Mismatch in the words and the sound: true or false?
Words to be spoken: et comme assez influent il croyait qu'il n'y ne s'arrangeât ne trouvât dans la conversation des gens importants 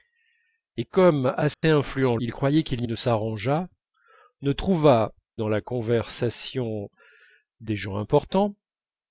true